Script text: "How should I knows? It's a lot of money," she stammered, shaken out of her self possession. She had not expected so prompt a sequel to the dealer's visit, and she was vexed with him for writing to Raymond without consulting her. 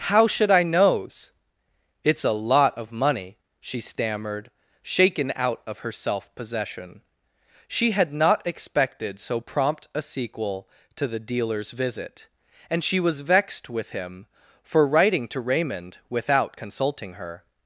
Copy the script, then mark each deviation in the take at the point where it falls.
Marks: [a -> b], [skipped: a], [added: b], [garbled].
"How should I knows? It's a lot of money," she stammered, shaken out of her self possession. She had not expected so prompt a sequel to the dealer's visit, and she was vexed with him for writing to Raymond without consulting her.